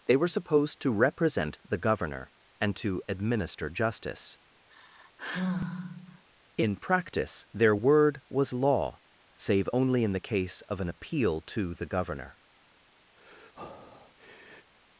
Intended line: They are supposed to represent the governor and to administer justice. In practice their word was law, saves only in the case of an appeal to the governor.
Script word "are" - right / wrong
wrong